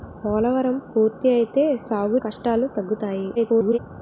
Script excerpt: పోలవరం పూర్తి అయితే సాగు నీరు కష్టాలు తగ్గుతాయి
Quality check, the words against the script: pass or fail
fail